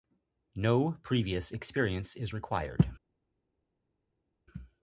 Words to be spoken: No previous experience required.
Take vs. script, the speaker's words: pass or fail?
fail